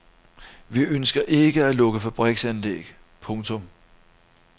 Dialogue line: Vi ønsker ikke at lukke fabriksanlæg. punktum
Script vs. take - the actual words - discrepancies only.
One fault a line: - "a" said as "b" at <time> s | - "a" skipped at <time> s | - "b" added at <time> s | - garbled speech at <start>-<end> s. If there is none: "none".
none